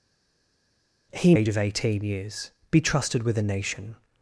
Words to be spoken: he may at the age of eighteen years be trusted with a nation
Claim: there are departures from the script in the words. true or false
true